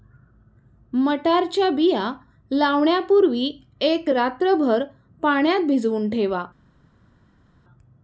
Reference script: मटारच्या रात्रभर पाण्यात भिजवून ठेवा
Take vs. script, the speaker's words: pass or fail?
fail